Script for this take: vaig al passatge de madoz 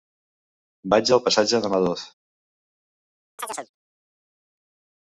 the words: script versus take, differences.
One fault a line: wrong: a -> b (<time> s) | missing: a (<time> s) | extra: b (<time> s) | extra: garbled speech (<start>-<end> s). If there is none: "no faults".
no faults